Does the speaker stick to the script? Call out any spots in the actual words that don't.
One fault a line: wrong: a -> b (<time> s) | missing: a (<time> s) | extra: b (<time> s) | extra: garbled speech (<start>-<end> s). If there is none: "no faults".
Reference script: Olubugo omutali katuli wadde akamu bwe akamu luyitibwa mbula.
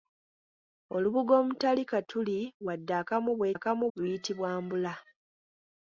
no faults